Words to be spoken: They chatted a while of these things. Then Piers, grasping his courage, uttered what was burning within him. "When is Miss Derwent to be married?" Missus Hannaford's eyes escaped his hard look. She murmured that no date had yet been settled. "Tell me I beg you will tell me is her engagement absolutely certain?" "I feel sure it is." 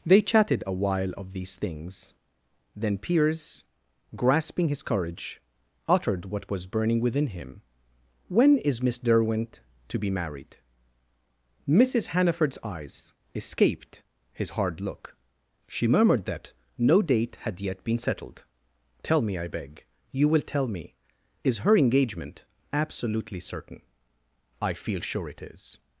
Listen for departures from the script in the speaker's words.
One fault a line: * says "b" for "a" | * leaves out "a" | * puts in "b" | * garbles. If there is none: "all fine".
all fine